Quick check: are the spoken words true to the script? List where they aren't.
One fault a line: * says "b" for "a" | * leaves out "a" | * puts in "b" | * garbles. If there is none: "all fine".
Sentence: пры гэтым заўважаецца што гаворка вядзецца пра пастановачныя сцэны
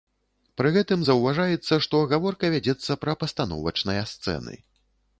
all fine